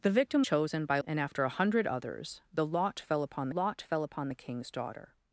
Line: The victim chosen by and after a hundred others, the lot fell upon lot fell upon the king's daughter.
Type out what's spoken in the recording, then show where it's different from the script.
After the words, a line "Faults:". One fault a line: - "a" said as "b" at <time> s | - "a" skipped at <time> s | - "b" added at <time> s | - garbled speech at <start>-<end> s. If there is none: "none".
The victim chosen by and after a hundred others, the lot fell upon lot fell upon the king's daughter.
Faults:
none